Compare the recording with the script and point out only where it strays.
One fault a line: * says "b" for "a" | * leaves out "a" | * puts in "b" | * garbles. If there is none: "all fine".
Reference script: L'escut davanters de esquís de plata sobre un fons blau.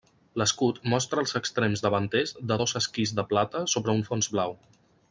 * puts in "mostra els extrems"
* puts in "dos"